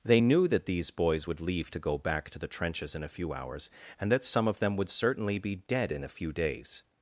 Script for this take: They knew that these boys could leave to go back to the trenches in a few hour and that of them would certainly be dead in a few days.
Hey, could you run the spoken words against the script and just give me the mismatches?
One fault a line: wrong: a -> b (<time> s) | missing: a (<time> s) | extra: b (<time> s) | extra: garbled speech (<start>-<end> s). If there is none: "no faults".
wrong: could -> would (1.3 s)
wrong: hour -> hours (3.3 s)
extra: some (4.2 s)